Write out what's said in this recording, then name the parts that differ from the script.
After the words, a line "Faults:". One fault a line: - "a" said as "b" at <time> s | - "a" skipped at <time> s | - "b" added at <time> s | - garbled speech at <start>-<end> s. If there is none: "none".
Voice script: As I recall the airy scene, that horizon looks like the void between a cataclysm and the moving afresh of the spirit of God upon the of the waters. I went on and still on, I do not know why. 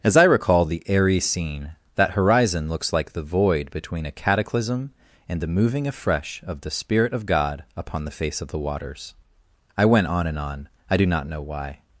As I recall the airy scene, that horizon looks like the void between a cataclysm and the moving afresh of the spirit of God upon the face of the waters. I went on and on, I do not know why.
Faults:
- "face" added at 8.2 s
- "still" skipped at 10.4 s